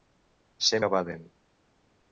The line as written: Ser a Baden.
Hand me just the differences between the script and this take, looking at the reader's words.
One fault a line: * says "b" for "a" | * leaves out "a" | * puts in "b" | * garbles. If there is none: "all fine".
all fine